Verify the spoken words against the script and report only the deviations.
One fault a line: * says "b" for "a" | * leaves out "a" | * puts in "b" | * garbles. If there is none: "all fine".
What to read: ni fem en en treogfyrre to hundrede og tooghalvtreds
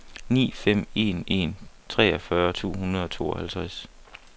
all fine